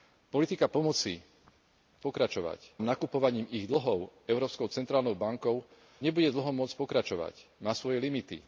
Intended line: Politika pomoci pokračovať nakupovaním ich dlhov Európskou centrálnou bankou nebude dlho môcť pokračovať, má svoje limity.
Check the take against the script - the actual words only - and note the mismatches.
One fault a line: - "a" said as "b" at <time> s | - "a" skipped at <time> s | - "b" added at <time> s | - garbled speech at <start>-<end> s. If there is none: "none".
none